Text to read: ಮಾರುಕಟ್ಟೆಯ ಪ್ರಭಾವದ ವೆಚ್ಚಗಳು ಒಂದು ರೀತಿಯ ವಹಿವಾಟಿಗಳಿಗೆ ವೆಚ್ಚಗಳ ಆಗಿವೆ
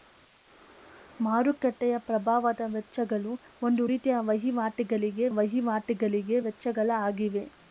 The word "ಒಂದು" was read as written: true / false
true